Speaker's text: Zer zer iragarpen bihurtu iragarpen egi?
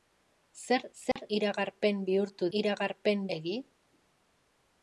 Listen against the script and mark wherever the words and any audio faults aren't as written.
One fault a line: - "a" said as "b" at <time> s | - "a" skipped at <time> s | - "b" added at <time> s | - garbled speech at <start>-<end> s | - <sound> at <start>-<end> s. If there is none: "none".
- dropout at 1.1-1.2 s